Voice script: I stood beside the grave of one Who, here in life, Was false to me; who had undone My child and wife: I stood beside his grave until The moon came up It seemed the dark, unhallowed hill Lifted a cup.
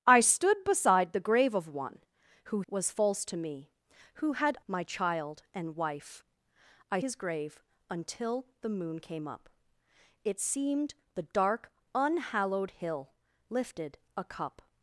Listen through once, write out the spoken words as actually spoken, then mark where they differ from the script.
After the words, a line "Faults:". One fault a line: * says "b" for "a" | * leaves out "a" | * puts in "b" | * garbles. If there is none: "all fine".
I stood beside the grave of one Who, Was false to me; who had My child and wife: I his grave until The moon came up It seemed the dark, unhallowed hill Lifted a cup.
Faults:
* leaves out "here in life"
* leaves out "undone"
* leaves out "stood beside"